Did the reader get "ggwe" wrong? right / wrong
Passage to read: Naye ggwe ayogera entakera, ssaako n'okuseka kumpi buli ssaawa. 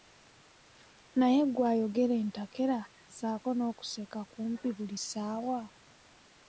right